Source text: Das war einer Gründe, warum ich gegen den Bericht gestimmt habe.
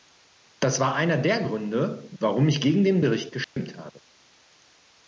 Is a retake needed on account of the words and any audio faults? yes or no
yes